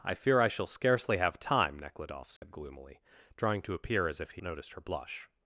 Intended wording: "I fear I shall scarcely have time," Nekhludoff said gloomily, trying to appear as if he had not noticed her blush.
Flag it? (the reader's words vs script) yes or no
yes